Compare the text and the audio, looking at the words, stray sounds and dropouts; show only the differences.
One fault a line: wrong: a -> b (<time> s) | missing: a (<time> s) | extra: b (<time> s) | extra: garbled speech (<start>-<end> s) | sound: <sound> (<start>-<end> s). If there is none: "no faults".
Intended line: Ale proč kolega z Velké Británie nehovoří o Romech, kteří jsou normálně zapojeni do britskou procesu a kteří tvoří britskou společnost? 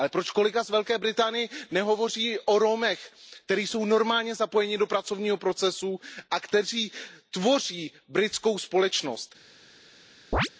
wrong: britskou -> pracovního (4.9 s)
sound: chirp (10.3-10.5 s)